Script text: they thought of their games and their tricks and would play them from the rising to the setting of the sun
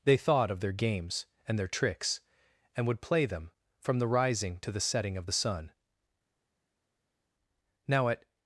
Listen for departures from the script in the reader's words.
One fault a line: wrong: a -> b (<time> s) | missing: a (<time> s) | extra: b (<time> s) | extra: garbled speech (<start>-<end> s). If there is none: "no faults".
extra: now at (7.9 s)